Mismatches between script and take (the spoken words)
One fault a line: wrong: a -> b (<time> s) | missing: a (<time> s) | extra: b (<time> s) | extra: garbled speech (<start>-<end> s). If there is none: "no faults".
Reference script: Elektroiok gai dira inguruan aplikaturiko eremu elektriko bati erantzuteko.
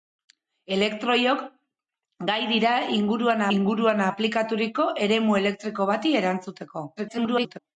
extra: inguruan (3.6 s)
extra: garbled speech (7.0-7.6 s)